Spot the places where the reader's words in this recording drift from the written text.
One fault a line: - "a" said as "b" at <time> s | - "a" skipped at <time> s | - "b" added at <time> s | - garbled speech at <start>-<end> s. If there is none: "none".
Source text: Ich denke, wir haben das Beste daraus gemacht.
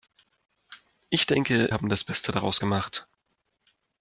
- "wir" skipped at 1.7 s